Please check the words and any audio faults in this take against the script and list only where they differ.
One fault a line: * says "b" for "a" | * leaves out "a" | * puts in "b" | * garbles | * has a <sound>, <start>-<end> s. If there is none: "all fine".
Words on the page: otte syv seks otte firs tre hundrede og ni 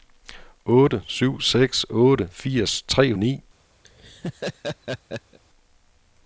* leaves out "hundrede"
* has a laugh, 3.8-5.4 s